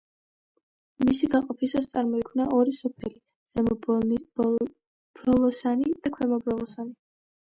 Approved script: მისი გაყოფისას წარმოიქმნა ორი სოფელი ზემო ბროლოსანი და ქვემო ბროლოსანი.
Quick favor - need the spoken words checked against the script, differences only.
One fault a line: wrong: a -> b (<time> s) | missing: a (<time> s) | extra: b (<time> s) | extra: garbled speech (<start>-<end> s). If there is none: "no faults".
no faults